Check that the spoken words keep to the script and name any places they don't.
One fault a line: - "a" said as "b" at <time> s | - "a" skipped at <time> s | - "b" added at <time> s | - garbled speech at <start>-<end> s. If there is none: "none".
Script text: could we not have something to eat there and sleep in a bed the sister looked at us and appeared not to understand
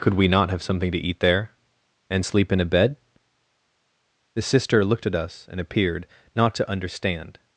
none